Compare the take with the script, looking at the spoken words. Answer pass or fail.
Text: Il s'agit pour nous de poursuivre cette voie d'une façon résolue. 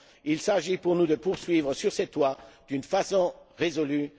fail